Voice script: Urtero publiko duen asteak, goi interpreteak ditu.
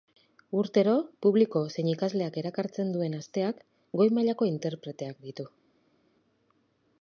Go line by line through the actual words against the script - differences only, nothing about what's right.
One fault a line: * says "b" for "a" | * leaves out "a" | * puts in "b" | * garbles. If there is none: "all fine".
* puts in "zein ikasleak erakartzen"
* puts in "mailako"